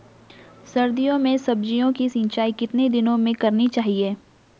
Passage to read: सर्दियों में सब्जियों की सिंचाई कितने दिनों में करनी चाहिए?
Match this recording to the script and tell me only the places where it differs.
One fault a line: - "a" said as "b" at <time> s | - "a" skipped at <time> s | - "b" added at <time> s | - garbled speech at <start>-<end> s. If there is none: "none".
none